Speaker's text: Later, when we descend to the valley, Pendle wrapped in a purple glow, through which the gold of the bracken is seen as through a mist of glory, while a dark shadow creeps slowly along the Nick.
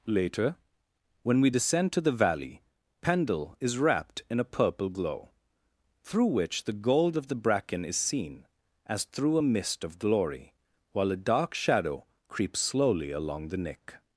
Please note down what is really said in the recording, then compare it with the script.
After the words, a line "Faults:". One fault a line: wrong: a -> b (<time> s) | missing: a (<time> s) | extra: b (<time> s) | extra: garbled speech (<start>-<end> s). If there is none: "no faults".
Later, when we descend to the valley, Pendle is wrapped in a purple glow, through which the gold of the bracken is seen as through a mist of glory, while a dark shadow creeps slowly along the Nick.
Faults:
extra: is (3.6 s)